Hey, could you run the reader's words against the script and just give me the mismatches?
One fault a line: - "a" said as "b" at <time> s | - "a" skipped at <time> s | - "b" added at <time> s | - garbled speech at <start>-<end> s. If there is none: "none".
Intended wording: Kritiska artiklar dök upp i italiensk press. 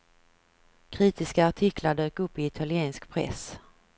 none